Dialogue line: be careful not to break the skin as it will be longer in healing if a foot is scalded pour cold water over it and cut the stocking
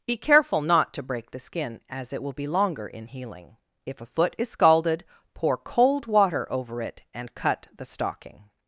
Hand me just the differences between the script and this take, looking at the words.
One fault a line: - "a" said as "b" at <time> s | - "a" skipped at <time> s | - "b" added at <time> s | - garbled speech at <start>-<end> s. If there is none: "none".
none